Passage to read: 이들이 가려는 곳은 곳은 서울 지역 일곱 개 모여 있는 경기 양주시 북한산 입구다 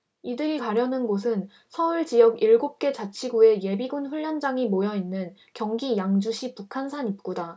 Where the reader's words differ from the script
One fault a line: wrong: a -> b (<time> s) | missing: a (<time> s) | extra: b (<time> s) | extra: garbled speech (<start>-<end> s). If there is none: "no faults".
missing: 곳은 (1.5 s)
extra: 자치구의 예비군 훈련장이 (2.9 s)